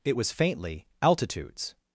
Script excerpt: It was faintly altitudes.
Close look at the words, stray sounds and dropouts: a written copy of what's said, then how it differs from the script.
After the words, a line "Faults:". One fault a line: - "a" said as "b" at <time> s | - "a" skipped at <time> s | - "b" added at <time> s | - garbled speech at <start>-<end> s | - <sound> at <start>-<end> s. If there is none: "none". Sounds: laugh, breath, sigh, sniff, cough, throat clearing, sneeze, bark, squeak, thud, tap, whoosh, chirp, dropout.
It was faintly altitudes.
Faults:
none